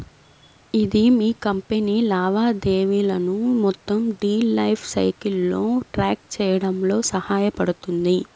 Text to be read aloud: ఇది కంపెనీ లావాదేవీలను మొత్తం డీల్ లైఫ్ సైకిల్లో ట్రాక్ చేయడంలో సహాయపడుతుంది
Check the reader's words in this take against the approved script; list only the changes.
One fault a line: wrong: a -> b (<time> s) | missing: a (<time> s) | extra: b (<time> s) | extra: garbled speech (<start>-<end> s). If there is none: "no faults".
extra: మీ (1.1 s)